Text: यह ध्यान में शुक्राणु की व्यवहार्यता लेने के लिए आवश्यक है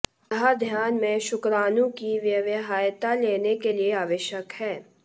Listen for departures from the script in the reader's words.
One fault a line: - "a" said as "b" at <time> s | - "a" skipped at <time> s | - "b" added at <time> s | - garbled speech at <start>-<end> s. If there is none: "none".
none